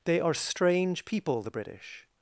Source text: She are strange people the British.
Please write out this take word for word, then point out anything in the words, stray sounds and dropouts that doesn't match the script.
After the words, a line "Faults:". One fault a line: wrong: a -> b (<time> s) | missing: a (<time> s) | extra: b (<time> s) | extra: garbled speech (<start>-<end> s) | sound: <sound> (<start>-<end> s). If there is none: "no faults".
They are strange people the British.
Faults:
wrong: She -> They (0.1 s)